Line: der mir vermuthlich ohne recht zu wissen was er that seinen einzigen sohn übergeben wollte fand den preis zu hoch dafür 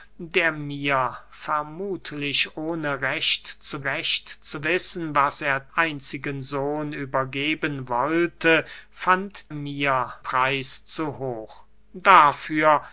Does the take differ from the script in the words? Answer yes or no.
yes